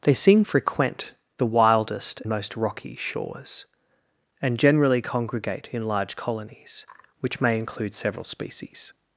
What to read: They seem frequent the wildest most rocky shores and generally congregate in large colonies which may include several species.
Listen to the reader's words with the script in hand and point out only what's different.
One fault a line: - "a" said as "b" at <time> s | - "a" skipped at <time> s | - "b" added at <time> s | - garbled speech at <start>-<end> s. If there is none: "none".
none